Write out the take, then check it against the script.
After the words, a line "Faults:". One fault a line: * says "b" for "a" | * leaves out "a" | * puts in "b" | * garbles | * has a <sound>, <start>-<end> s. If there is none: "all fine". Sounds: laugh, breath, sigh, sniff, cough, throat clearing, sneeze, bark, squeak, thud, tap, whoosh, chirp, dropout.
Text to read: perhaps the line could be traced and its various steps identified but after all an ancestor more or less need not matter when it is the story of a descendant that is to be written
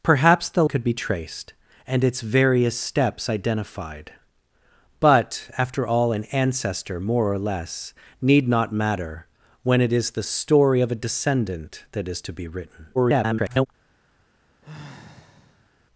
perhaps the could be traced and its various steps identified but after all an ancestor more or less need not matter when it is the story of a descendant that is to be written [garbled]
Faults:
* leaves out "line"
* garbles
* has a sigh, 14.6-15.7 s